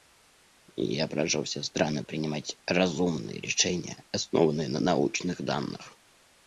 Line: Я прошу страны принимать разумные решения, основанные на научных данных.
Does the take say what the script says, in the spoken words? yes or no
no